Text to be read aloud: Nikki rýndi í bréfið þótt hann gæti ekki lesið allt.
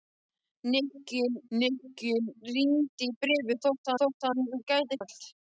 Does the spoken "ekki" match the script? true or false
false